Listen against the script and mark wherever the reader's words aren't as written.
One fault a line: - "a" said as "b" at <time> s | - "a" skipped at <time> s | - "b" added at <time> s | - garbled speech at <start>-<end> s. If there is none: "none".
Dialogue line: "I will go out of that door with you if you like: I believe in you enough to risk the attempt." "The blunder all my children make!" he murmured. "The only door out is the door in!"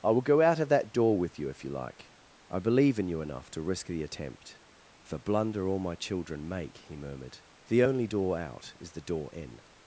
none